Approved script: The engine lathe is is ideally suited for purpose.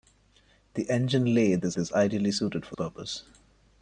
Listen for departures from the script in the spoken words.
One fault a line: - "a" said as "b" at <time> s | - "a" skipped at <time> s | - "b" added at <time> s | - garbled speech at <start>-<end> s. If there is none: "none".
none